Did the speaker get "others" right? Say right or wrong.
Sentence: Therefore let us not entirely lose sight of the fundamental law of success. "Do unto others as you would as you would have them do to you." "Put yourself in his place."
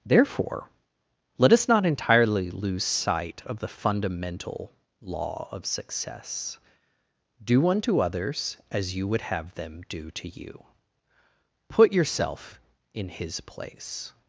right